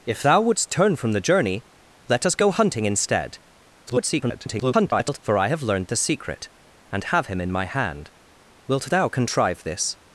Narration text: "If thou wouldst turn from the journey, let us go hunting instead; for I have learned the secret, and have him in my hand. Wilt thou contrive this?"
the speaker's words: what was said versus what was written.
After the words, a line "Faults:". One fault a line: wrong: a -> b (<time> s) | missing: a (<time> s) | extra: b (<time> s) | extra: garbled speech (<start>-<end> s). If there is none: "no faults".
"If thou wouldst turn from the journey, let us go hunting instead; [garbled] for I have learned the secret, and have him in my hand. Wilt thou contrive this?"
Faults:
extra: garbled speech (3.9-5.2 s)